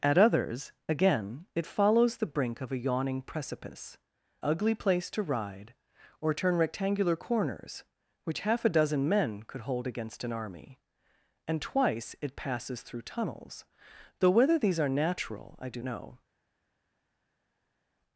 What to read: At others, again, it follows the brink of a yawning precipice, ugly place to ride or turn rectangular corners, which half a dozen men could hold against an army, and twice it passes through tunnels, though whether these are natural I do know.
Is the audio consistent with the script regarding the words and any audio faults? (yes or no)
yes